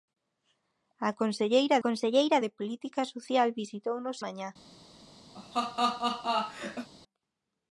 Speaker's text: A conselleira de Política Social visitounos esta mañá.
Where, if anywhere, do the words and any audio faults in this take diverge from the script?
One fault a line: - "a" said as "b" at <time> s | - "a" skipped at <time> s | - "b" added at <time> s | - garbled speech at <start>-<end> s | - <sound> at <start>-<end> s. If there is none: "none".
- "conselleira" added at 1.9 s
- "esta" skipped at 4.2 s
- laugh at 5.3-6.9 s